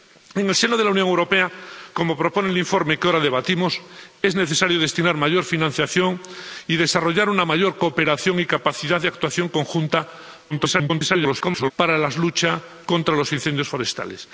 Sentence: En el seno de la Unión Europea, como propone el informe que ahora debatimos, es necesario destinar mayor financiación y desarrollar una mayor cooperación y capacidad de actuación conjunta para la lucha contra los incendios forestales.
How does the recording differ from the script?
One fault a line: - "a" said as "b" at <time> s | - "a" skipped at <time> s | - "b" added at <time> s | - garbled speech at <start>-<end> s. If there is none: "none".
- garbled speech at 10.5-11.7 s